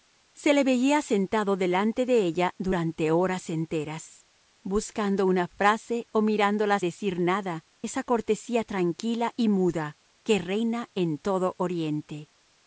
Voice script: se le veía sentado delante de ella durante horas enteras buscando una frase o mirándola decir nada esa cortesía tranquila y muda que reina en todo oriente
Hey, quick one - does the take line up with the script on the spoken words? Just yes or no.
yes